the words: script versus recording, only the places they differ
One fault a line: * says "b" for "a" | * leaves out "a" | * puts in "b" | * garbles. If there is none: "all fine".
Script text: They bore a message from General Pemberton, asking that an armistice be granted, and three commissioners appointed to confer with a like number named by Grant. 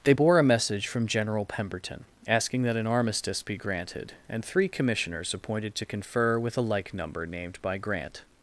all fine